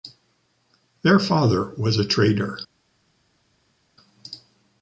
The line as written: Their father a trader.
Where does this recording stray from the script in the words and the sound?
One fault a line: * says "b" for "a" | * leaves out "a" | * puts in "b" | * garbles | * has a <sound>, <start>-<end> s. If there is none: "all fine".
* puts in "was"